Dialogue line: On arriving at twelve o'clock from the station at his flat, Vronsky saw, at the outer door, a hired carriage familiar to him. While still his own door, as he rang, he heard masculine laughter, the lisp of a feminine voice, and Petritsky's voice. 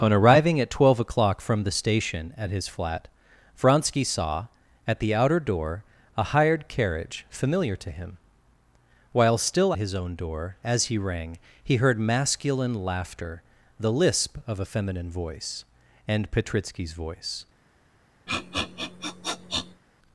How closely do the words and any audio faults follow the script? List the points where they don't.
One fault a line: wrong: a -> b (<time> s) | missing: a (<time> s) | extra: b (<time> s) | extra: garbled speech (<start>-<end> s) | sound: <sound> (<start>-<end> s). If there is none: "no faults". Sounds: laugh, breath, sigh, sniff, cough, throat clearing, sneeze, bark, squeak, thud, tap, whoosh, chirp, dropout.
sound: sniff (18.3-19.8 s)